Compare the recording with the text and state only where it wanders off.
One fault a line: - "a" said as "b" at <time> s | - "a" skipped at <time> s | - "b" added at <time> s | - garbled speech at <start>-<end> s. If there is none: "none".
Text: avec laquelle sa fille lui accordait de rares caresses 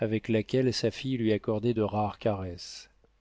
none